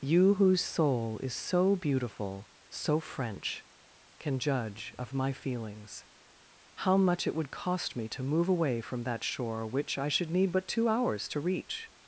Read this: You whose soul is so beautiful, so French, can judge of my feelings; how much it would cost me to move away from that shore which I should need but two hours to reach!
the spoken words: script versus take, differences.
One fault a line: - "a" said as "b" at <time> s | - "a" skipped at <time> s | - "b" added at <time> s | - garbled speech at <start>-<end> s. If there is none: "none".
none